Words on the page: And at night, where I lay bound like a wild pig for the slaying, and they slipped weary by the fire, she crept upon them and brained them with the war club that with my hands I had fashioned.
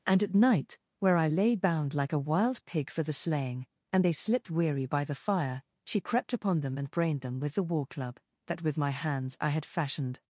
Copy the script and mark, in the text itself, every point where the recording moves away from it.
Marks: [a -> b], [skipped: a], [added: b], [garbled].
And at night, where I lay bound like a wild pig for the slaying, and they slipped weary by the fire, she crept upon them and brained them with the war club that with my hands I had fashioned.